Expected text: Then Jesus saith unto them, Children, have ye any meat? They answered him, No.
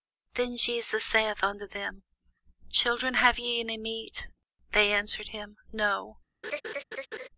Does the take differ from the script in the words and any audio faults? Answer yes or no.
yes